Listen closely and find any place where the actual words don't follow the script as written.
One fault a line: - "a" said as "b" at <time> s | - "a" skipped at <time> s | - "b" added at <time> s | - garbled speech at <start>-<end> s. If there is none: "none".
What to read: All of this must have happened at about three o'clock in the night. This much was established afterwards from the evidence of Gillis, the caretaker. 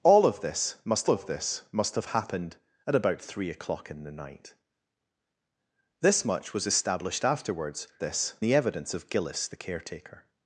- "of this must" added at 1.1 s
- "from" said as "this" at 8.0 s